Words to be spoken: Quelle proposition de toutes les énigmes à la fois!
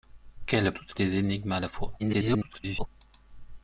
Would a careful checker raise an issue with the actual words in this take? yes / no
yes